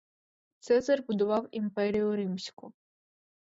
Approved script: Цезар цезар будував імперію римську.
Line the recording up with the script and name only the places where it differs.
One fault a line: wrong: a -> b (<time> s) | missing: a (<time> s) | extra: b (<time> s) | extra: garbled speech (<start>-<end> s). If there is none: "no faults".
missing: цезар (1.1 s)